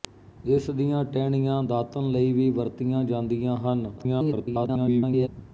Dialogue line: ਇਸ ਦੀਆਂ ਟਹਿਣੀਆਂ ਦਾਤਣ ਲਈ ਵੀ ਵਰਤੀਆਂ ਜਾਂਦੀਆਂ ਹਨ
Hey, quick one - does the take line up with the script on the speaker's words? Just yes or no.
no